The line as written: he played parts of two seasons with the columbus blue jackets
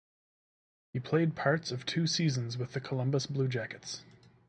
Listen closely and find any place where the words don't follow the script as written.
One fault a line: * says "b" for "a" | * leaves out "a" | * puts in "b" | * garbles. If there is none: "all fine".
all fine